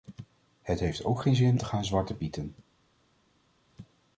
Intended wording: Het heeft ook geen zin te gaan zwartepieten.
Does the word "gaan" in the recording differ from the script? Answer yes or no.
no